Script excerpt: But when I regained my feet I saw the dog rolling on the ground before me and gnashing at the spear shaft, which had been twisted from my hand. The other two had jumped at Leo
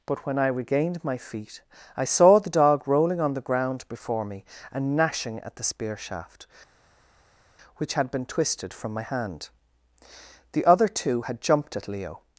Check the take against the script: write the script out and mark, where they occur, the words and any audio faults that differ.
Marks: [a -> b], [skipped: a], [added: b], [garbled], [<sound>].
But when I regained my feet I saw the dog rolling on the ground before me and gnashing at the spear shaft, which had been twisted from my hand. The other two had jumped at Leo